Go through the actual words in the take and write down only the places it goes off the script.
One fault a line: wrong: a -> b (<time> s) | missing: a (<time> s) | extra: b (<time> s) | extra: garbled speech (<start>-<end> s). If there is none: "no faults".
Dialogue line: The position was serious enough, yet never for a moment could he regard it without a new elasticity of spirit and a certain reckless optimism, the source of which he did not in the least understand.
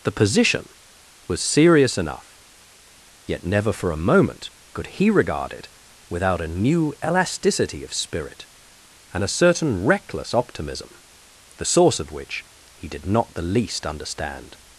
missing: in (13.3 s)